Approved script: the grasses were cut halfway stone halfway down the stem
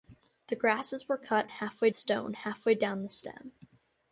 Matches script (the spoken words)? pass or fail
pass